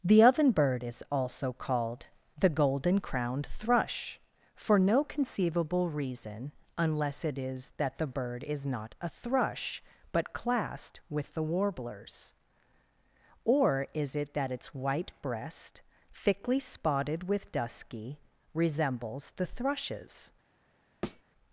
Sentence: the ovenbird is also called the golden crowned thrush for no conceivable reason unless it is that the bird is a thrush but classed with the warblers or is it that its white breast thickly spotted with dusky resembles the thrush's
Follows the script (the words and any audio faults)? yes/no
no